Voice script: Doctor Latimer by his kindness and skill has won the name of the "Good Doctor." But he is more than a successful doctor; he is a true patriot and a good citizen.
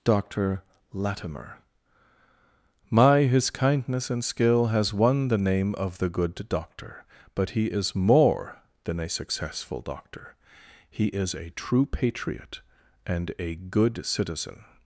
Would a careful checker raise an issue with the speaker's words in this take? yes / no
yes